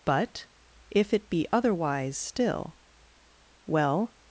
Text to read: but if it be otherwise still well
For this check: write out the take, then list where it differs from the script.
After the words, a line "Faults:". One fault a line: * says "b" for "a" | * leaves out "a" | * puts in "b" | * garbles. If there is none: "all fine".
but if it be otherwise still well
Faults:
all fine